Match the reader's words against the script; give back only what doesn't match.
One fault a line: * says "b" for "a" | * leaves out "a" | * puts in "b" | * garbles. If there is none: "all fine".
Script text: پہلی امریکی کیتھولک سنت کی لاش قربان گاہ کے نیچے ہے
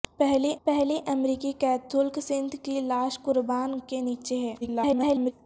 * puts in "پہلی"
* leaves out "گاہ"
* garbles